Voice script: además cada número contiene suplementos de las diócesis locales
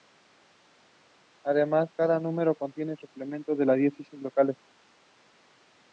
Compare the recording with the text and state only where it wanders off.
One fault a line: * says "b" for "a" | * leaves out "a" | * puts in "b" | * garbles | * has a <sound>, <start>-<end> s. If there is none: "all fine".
all fine